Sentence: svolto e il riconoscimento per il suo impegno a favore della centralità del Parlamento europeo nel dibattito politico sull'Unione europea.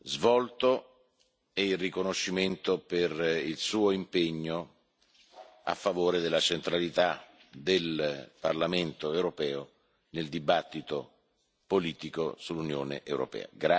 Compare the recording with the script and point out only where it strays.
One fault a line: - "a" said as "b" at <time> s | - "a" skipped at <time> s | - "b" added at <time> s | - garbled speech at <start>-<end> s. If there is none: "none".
none